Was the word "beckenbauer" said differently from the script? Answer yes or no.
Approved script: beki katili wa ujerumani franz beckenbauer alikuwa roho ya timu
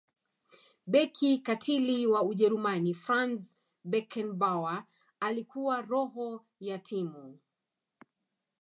no